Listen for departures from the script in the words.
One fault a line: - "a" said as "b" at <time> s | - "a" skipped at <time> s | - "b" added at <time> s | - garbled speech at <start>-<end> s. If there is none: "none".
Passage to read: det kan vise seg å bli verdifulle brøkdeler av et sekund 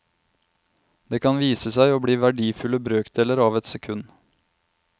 none